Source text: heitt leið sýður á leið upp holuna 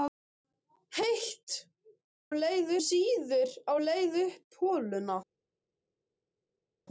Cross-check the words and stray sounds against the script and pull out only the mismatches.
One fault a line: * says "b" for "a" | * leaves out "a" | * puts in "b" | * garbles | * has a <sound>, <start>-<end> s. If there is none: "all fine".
all fine